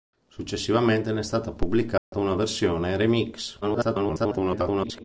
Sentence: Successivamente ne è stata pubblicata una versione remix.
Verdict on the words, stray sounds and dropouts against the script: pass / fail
fail